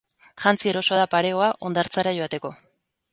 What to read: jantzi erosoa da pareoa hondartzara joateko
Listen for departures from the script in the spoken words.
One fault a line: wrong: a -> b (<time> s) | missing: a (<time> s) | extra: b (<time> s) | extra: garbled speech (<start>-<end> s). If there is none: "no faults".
no faults